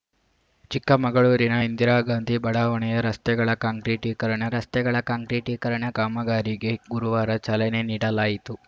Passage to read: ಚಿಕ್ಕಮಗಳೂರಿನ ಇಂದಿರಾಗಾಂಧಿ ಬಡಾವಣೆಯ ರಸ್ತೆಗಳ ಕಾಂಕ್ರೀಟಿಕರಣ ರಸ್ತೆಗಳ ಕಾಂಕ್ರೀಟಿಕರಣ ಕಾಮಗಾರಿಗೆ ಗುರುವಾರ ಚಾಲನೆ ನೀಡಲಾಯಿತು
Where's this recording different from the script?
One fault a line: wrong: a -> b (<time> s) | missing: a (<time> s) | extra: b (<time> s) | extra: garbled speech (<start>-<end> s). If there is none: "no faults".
no faults